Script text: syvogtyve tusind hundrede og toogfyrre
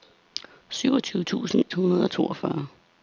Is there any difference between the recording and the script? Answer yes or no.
no